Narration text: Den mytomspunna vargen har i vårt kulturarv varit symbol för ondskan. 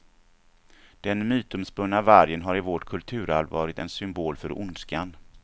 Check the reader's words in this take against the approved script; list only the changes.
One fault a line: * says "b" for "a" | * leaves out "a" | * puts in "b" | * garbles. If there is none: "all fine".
* puts in "en"